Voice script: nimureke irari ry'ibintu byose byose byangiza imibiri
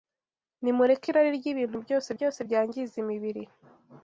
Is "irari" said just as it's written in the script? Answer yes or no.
yes